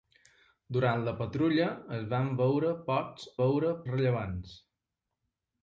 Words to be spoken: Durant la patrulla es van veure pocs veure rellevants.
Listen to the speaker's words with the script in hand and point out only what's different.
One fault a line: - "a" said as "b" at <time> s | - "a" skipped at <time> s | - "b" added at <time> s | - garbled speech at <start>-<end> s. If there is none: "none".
none